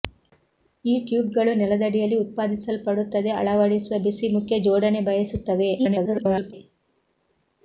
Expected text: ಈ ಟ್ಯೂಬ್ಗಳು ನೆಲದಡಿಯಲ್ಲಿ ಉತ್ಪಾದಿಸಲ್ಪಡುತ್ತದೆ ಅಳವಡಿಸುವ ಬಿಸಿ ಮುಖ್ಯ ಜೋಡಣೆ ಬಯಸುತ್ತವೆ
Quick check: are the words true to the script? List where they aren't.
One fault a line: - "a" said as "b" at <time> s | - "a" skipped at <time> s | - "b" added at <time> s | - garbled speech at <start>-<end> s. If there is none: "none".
- garbled speech at 5.8-6.5 s